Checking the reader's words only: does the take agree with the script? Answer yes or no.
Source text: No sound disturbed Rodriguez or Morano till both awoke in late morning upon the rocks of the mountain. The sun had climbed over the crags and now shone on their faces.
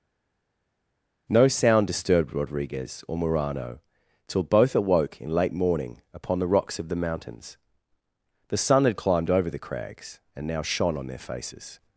no